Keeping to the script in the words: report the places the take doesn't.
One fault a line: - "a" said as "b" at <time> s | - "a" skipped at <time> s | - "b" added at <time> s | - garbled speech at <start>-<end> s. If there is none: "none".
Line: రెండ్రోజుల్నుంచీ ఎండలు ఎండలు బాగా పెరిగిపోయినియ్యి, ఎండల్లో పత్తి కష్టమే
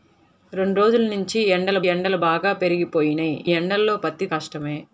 none